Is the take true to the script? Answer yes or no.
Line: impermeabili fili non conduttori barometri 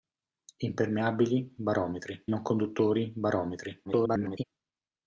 no